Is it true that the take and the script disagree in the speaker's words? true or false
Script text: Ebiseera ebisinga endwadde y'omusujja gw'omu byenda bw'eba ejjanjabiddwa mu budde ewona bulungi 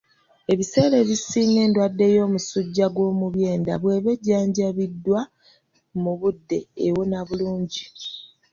false